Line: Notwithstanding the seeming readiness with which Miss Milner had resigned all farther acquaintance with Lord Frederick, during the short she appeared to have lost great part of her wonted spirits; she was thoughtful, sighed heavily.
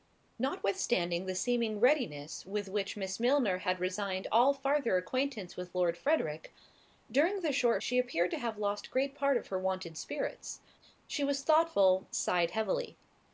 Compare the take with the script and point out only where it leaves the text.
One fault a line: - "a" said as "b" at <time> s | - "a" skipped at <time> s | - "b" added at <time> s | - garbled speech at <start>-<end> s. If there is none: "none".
none